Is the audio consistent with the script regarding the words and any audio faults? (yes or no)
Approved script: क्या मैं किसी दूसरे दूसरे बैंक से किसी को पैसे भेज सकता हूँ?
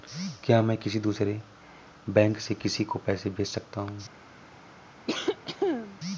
no